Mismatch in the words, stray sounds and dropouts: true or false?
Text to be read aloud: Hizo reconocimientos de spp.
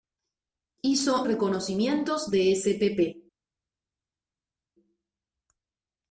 false